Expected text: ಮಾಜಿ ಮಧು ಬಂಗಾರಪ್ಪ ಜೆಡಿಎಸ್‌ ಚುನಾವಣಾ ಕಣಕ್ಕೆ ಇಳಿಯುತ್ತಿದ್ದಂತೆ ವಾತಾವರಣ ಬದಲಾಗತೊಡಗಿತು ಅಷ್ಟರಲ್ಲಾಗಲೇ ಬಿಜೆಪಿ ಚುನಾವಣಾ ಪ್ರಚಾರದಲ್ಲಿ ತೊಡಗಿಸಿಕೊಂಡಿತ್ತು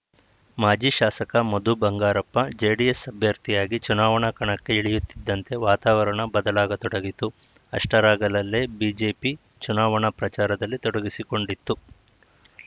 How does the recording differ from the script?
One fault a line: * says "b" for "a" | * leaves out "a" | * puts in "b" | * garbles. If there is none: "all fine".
* puts in "ಶಾಸಕ"
* puts in "ಅಭ್ಯರ್ಥಿಯಾಗಿ"